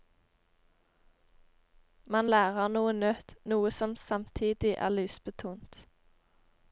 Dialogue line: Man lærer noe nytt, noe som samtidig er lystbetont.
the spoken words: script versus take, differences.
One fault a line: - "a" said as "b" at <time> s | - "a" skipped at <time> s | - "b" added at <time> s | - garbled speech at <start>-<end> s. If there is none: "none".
none